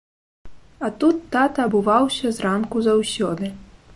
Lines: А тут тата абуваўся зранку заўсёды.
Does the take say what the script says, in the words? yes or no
yes